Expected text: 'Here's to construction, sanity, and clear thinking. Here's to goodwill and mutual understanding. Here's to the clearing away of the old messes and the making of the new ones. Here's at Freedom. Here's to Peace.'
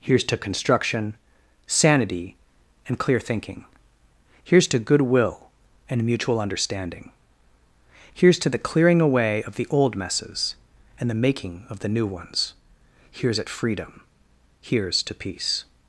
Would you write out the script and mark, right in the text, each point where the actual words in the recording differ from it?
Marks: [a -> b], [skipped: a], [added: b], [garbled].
'Here's to construction, sanity, and clear thinking. Here's to goodwill and mutual understanding. Here's to the clearing away of the old messes and the making of the new ones. Here's at Freedom. Here's to Peace.'